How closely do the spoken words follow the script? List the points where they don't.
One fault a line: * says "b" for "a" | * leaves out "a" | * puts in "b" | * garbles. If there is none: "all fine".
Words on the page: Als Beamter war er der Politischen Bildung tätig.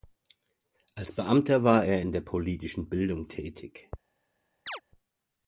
* puts in "in"